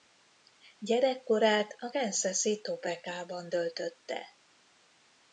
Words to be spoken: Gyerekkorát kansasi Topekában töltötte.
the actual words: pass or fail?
fail